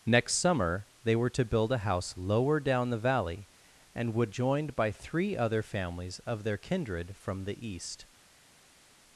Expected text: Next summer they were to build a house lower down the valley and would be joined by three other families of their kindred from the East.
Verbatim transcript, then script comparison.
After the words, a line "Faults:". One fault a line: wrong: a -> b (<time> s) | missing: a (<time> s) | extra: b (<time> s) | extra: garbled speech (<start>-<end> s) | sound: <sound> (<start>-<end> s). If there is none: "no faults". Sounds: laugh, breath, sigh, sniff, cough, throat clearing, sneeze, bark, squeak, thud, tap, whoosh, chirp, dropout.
Next summer they were to build a house lower down the valley and would joined by three other families of their kindred from the East.
Faults:
missing: be (4.3 s)